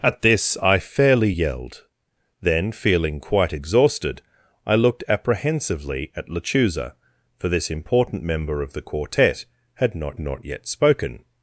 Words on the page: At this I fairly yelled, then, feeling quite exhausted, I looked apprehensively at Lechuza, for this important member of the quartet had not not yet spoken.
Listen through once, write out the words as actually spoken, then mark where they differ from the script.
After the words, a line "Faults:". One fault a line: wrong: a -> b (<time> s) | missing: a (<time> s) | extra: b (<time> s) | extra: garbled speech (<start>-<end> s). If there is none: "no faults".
At this I fairly yelled, then, feeling quite exhausted, I looked apprehensively at Lechuza, for this important member of the quartet had not not yet spoken.
Faults:
no faults